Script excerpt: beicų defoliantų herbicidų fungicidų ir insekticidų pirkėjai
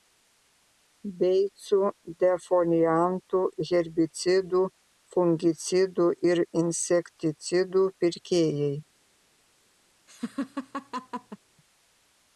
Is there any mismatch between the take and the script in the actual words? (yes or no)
no